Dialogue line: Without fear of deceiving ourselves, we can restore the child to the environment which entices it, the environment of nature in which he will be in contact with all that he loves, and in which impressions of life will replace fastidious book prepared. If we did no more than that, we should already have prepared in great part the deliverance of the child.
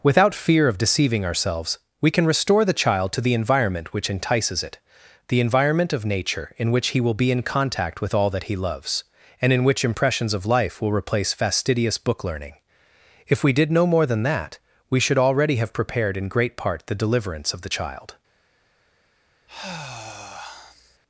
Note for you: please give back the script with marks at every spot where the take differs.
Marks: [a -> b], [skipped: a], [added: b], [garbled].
Without fear of deceiving ourselves, we can restore the child to the environment which entices it, the environment of nature in which he will be in contact with all that he loves, and in which impressions of life will replace fastidious book [prepared. -> learning] If we did no more than that, we should already have prepared in great part the deliverance of the child.